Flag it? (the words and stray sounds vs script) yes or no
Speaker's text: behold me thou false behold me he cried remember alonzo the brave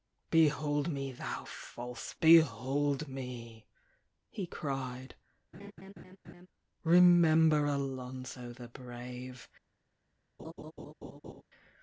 yes